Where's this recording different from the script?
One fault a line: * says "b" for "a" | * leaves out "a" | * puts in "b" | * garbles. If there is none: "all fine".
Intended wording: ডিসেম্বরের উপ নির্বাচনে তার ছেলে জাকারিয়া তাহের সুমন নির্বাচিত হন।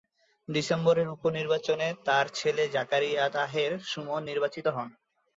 all fine